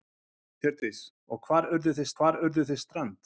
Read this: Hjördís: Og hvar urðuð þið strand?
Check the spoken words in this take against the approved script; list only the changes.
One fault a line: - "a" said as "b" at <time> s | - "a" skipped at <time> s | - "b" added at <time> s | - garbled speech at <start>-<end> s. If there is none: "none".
- "hvar urðuð þið" added at 2.2 s